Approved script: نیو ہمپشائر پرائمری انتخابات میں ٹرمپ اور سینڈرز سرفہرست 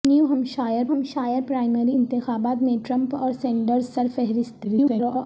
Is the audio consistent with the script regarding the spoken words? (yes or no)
no